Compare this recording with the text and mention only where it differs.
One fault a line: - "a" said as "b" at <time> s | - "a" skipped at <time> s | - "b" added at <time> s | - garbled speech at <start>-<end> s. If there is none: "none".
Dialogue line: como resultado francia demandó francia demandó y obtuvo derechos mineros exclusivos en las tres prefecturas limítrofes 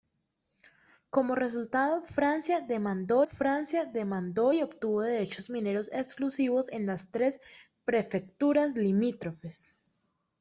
none